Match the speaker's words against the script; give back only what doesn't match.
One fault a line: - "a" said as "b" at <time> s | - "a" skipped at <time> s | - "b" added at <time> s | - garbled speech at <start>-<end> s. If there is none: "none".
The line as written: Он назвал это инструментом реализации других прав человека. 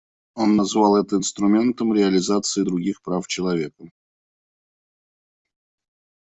none